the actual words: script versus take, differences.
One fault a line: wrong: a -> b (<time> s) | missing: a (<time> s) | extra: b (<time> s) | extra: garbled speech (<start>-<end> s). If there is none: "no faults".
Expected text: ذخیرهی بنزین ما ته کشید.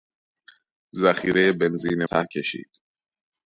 missing: ما (2.0 s)